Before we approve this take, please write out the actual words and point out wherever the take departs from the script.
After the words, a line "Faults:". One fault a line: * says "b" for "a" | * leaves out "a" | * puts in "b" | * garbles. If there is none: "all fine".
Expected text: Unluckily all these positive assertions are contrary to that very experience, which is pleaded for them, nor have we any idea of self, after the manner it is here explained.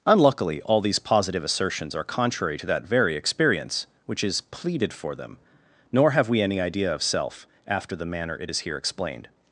Unluckily all these positive assertions are contrary to that very experience, which is pleaded for them, nor have we any idea of self, after the manner it is here explained.
Faults:
all fine